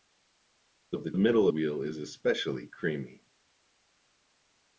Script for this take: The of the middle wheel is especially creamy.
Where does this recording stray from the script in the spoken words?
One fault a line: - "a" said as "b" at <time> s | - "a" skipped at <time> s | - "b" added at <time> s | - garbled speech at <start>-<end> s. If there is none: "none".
none